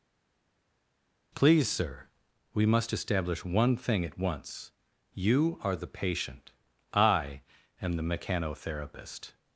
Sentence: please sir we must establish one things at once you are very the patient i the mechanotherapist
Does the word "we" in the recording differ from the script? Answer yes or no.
no